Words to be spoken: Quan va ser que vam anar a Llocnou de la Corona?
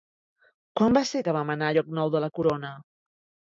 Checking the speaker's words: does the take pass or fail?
pass